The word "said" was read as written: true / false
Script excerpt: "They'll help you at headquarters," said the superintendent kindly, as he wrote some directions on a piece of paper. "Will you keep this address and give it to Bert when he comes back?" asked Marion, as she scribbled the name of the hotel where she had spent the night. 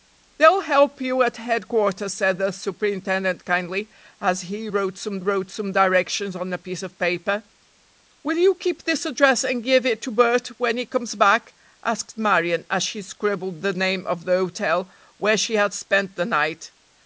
true